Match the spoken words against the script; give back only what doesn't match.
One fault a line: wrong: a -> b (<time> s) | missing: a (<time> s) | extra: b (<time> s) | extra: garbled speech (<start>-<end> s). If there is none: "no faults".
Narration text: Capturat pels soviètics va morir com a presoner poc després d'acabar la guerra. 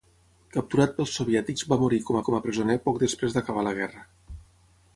extra: com (2.3 s)